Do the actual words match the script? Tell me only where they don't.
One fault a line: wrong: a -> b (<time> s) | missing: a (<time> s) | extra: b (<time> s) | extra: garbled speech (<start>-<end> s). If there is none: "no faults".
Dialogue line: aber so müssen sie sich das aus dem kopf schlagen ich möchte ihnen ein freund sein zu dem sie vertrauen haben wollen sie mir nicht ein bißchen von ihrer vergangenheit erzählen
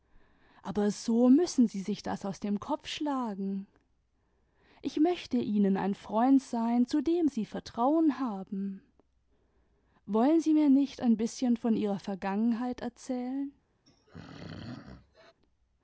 no faults